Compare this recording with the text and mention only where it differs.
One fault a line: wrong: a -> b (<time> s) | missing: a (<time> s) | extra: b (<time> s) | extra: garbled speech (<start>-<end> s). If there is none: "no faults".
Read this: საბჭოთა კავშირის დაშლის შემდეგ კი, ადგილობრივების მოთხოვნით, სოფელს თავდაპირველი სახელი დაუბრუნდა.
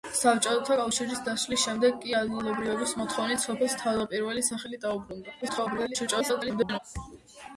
extra: garbled speech (5.4-6.8 s)